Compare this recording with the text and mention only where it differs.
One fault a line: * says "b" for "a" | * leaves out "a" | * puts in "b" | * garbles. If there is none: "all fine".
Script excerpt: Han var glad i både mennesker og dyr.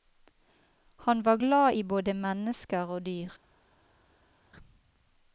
all fine